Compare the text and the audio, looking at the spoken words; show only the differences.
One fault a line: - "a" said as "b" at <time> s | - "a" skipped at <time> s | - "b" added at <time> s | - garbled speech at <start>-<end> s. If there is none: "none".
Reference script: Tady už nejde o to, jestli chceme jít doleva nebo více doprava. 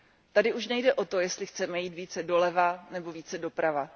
- "více" added at 1.9 s